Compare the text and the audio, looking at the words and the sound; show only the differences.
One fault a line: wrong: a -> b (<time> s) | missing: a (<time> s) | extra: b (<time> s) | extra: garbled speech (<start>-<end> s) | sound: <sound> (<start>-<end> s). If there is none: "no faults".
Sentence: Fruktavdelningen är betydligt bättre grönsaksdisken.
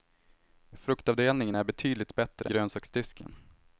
no faults